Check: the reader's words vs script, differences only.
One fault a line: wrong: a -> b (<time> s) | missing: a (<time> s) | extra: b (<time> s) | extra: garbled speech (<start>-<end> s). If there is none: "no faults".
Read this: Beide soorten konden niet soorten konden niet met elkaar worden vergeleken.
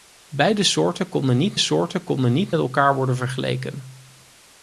no faults